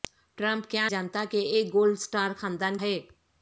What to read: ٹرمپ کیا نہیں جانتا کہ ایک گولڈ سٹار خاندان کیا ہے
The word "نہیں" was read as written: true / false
false